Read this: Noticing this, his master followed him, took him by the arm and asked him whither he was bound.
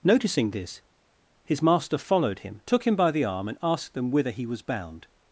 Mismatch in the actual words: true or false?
true